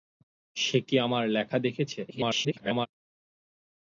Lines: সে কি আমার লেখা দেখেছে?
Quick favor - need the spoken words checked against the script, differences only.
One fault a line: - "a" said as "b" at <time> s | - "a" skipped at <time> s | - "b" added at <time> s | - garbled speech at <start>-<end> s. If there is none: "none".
- garbled speech at 2.1-2.9 s